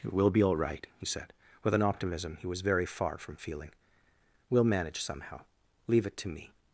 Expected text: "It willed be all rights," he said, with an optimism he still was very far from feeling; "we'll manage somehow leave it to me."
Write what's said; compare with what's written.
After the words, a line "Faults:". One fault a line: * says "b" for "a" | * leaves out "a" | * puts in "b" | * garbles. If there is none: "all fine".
"It will be all right," he said, with an optimism he was very far from feeling; "we'll manage somehow leave it to me."
Faults:
* says "will" for "willed"
* says "right" for "rights"
* leaves out "still"